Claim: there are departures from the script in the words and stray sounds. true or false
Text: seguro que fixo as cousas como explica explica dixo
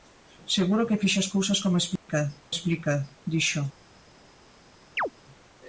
true